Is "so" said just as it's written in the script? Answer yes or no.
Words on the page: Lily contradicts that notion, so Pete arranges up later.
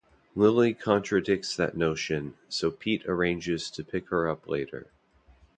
yes